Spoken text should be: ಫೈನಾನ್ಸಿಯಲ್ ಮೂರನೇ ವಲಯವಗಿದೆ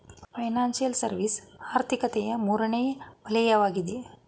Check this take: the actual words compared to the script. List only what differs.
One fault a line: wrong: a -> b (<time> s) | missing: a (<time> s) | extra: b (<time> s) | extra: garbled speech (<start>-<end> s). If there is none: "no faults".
extra: ಸರ್ವಿಸ್ ಆರ್ಥಿಕತೆಯ (1.0 s)